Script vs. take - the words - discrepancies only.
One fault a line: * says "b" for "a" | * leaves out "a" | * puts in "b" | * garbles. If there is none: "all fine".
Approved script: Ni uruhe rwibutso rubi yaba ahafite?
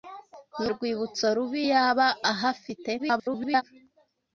* leaves out "uruhe"
* garbles